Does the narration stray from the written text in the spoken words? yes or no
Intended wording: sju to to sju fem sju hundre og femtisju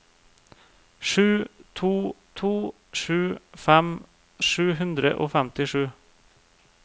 no